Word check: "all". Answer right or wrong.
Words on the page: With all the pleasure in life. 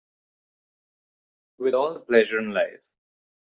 right